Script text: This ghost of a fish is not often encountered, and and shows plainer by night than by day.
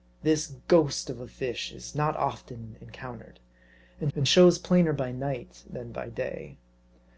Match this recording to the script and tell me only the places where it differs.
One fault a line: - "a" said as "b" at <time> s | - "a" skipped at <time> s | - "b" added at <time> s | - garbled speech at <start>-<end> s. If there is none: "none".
none